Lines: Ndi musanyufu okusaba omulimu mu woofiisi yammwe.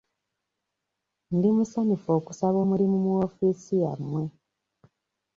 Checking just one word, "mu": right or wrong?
right